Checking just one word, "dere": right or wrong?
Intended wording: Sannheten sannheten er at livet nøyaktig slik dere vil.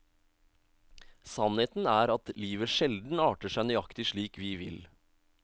wrong